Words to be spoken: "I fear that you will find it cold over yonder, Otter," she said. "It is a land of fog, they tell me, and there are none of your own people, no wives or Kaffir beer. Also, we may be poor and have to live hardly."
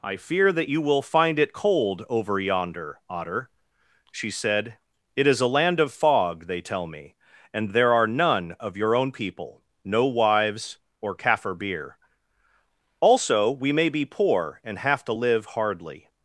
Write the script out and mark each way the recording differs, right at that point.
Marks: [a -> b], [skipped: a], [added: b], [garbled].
"I fear that you will find it cold over yonder, Otter," she said. "It is a land of fog, they tell me, and there are none of your own people, no wives or Kaffir beer. Also, we may be poor and have to live hardly."